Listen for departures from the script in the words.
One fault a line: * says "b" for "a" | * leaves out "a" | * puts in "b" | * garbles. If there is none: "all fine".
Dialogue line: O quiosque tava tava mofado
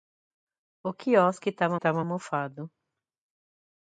all fine